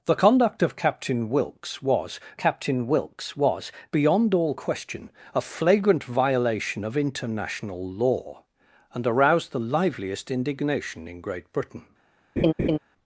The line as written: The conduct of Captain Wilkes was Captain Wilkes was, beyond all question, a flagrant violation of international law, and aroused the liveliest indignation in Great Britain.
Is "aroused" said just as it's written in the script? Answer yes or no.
yes